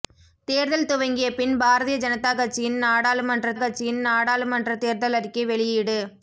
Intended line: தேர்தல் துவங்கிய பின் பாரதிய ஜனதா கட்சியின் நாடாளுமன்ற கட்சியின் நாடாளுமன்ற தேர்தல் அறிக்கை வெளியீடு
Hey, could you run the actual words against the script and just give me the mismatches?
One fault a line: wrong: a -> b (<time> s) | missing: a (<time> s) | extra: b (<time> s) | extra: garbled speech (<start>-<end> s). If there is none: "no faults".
no faults